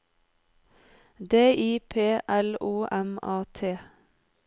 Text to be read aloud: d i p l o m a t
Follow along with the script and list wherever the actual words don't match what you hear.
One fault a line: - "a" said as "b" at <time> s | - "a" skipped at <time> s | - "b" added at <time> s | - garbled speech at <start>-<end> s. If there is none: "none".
none